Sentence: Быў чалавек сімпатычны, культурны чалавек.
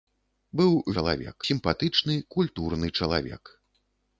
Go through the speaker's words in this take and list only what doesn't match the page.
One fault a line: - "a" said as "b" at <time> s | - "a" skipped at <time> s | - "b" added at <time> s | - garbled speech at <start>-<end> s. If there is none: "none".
none